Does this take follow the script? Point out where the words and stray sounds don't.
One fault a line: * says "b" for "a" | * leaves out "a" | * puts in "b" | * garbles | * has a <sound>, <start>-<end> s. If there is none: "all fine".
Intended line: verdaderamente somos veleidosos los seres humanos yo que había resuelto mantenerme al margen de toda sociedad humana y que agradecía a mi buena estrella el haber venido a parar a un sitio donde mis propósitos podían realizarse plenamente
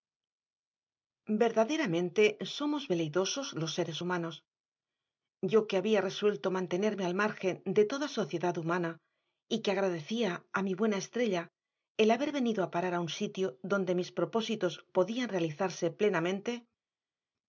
all fine